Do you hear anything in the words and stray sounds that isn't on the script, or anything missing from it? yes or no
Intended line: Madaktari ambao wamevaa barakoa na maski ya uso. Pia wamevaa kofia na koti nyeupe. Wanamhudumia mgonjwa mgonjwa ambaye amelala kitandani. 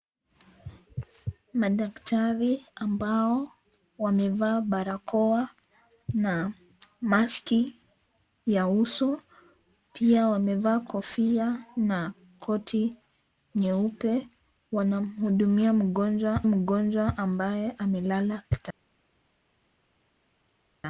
no